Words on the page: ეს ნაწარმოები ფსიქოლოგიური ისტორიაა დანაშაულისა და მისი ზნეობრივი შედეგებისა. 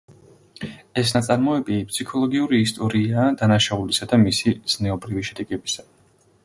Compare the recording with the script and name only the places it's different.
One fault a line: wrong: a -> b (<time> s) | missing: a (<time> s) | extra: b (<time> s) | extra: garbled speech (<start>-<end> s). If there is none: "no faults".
no faults